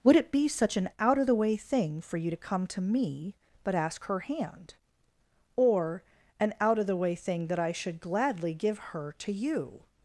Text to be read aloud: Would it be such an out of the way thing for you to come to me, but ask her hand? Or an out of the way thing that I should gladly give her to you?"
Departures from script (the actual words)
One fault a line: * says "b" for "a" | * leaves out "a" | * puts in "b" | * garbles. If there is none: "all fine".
all fine